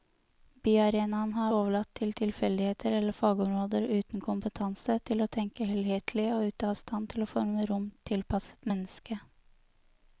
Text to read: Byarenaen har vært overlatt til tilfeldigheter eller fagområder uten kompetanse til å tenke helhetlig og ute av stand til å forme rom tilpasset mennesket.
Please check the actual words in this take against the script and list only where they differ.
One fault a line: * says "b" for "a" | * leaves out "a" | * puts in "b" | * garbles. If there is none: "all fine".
* leaves out "vært"